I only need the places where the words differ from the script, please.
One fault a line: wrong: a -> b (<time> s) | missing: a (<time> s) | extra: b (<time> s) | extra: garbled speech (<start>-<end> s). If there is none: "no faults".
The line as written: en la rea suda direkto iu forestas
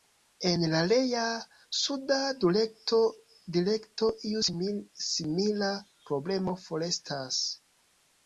extra: simila problemo (5.1 s)